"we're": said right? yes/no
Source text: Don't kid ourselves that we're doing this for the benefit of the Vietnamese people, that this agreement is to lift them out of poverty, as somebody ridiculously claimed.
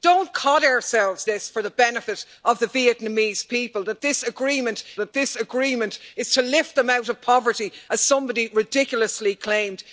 no